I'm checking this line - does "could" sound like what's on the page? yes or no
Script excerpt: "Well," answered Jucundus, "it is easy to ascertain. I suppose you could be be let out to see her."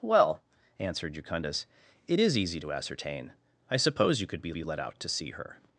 yes